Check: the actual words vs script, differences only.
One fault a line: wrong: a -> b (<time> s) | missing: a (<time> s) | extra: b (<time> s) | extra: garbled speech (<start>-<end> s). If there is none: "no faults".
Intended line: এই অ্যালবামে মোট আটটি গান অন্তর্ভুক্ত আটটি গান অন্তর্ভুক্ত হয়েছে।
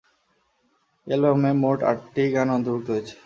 missing: আটটি গান অন্তর্ভুক্ত (2.9 s)